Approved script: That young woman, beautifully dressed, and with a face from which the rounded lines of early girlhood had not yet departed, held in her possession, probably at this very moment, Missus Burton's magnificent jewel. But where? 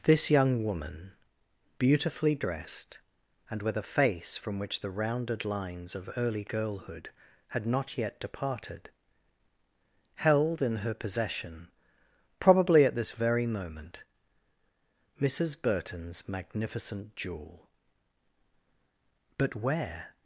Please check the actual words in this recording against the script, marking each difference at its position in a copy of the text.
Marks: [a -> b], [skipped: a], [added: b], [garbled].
[That -> This] young woman, beautifully dressed, and with a face from which the rounded lines of early girlhood had not yet departed, held in her possession, probably at this very moment, Missus Burton's magnificent jewel. But where?